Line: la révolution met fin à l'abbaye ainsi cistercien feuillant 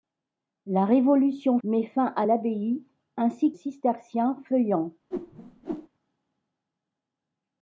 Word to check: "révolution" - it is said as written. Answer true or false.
true